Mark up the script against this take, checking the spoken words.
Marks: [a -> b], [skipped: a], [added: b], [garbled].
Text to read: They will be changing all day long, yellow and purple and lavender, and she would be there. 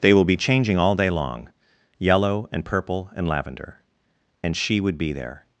They will be changing all day long, yellow and purple and lavender, and she would be there.